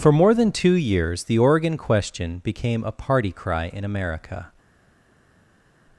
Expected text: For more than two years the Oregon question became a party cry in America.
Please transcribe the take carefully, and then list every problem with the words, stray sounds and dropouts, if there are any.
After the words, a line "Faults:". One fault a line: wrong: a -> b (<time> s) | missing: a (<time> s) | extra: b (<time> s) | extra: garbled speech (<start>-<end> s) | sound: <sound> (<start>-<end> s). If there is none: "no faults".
For more than two years the Oregon question became a party cry in America.
Faults:
no faults